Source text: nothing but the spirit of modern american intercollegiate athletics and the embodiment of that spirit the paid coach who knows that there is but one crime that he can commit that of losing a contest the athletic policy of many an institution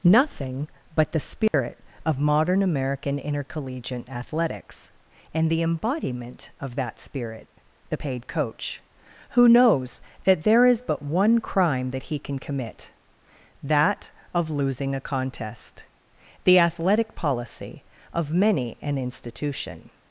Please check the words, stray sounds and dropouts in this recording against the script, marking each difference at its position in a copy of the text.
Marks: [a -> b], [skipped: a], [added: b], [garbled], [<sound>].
nothing but the spirit [dropout] of modern american intercollegiate athletics and the embodiment of that spirit the paid coach who knows that there is but one crime that he can commit that of losing a contest the athletic policy of many an institution